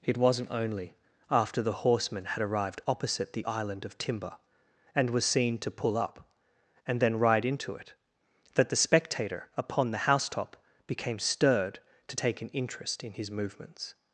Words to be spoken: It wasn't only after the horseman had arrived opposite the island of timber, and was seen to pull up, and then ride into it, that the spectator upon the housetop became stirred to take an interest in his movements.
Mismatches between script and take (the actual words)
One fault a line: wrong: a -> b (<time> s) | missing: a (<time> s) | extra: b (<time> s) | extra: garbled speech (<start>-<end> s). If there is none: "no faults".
no faults